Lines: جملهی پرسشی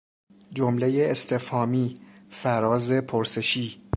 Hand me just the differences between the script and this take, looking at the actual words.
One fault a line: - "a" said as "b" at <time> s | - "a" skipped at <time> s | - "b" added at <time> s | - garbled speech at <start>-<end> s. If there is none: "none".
- "استفهامی فراز" added at 1.1 s